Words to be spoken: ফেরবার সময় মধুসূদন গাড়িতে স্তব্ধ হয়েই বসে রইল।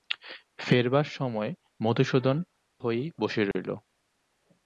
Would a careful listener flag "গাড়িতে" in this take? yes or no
yes